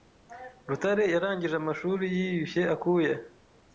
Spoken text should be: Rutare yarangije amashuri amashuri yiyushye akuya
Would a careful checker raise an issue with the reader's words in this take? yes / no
yes